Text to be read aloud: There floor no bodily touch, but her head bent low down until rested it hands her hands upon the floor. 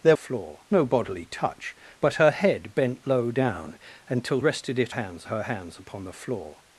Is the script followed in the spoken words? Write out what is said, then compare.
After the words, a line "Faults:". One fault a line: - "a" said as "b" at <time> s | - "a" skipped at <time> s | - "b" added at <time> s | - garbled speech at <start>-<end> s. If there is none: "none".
There floor no bodily touch, but her head bent low down until rested it hands her hands upon the floor.
Faults:
none